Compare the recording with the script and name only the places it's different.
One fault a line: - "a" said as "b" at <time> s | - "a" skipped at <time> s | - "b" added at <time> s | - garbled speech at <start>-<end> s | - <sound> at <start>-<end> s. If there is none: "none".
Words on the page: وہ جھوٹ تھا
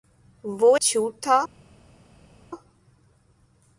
none